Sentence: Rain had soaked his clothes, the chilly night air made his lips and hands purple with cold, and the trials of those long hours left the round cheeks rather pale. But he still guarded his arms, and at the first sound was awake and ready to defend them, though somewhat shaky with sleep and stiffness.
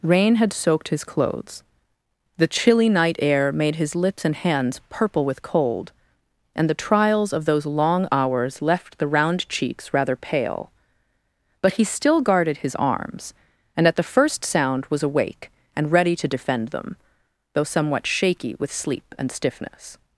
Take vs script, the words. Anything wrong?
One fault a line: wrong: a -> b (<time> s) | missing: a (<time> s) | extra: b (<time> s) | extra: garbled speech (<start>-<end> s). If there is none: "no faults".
no faults